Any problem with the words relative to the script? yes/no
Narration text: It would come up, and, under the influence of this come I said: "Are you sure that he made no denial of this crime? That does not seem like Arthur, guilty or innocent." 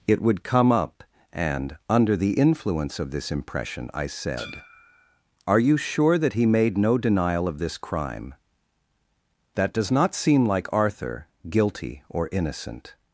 yes